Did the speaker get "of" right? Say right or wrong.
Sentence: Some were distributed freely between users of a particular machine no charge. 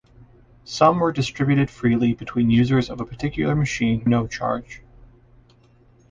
right